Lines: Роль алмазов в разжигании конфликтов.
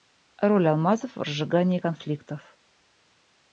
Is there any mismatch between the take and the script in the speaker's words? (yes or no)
no